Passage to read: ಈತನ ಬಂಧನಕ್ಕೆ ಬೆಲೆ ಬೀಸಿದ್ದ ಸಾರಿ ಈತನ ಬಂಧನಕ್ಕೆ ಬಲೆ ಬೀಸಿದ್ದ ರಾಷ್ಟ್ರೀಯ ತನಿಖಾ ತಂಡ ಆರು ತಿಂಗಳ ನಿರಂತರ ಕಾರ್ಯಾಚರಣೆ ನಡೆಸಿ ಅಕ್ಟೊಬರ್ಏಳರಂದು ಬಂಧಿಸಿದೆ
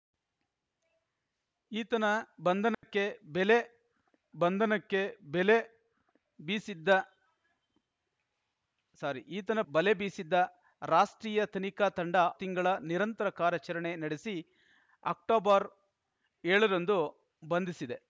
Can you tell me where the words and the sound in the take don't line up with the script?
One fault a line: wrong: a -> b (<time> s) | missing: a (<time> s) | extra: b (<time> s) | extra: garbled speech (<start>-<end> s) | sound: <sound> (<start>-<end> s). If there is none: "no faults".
sound: dropout (2.7-2.8 s)
extra: ಬಂಧನಕ್ಕೆ ಬೆಲೆ (4.4 s)
missing: ಬಂಧನಕ್ಕೆ (9.6 s)
missing: ಆರು (12.1 s)